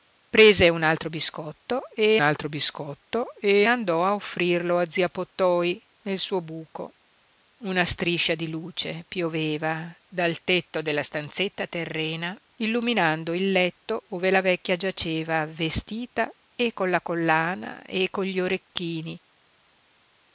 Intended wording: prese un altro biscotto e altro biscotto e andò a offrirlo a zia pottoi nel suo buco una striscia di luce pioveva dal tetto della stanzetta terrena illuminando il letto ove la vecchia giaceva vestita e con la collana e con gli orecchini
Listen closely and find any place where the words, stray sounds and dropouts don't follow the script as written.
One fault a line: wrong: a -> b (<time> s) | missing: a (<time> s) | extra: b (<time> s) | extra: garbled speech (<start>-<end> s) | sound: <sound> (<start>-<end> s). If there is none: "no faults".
no faults